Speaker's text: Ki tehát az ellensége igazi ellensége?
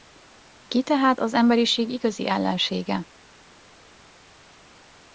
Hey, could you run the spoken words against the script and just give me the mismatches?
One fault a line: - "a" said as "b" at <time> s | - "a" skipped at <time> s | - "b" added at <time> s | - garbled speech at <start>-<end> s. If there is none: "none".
- "ellensége" said as "emberiség" at 1.3 s